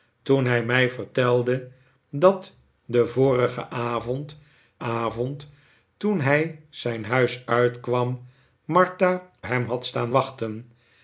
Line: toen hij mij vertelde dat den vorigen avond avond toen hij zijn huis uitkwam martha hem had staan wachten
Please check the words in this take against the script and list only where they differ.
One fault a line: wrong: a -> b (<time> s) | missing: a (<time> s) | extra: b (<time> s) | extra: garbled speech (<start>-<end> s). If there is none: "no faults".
no faults